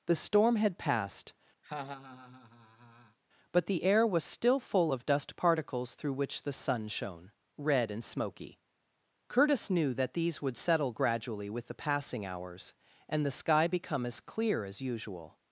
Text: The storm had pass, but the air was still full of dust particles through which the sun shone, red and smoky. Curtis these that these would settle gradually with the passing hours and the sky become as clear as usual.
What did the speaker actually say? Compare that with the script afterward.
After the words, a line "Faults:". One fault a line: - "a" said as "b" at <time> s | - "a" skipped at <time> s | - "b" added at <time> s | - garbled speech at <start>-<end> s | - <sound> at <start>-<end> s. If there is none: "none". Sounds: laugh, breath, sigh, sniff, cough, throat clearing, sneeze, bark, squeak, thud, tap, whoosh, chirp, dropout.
The storm had passed, but the air was still full of dust particles through which the sun shone, red and smoky. Curtis knew that these would settle gradually with the passing hours and the sky become as clear as usual.
Faults:
- "pass" said as "passed" at 0.8 s
- laugh at 1.6-3.2 s
- "these" said as "knew" at 9.7 s